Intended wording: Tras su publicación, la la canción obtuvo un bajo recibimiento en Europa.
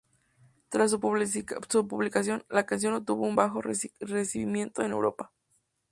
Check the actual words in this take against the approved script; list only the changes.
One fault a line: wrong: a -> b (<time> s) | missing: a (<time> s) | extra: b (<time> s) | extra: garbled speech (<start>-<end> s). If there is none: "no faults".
missing: la (2.6 s)